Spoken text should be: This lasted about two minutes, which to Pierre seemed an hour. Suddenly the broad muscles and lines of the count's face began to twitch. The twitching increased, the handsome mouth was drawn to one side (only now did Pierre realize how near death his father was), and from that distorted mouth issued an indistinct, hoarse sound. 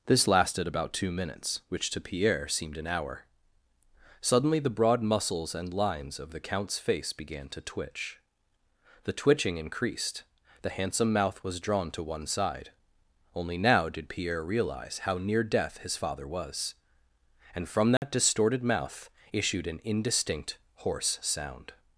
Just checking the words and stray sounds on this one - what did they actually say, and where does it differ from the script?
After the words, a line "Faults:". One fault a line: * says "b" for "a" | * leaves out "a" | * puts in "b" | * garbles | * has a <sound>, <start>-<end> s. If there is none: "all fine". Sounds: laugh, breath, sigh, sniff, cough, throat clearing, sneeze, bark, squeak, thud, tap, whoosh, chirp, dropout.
This lasted about two minutes, which to Pierre seemed an hour. Suddenly the broad muscles and lines of the count's face began to twitch. The twitching increased, the handsome mouth was drawn to one side (only now did Pierre realize how near death his father was), and from that distorted mouth issued an indistinct, hoarse sound.
Faults:
* has a dropout, 18.0-18.0 s